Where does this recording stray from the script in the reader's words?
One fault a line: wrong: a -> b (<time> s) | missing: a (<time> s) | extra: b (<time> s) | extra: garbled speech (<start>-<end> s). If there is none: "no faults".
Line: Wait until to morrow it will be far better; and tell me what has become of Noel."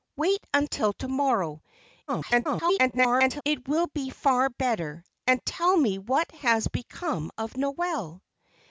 extra: garbled speech (2.1-3.4 s)